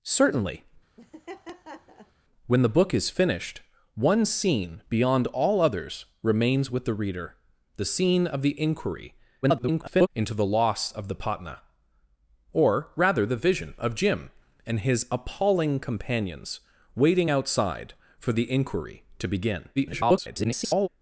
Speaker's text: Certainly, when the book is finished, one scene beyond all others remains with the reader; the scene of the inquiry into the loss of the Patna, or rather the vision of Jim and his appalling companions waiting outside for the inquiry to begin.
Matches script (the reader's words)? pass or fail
fail